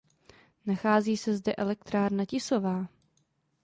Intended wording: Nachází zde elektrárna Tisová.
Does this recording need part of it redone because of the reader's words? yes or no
yes